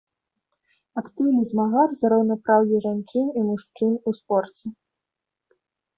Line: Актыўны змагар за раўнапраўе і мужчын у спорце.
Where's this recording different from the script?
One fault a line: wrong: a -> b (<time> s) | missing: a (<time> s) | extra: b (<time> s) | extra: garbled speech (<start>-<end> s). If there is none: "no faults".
extra: жанчын (2.8 s)